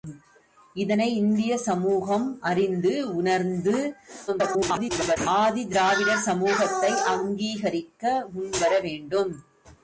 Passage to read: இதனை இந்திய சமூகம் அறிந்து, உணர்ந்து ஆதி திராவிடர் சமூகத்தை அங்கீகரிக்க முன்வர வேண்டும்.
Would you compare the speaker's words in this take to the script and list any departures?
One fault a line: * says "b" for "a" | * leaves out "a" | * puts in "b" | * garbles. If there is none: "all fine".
* garbles